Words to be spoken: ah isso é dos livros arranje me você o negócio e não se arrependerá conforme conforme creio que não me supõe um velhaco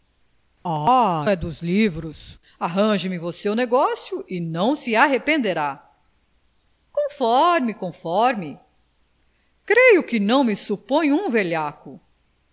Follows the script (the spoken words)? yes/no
no